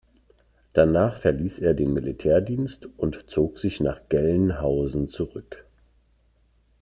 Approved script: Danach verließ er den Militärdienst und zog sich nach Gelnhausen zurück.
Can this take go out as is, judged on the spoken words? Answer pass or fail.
pass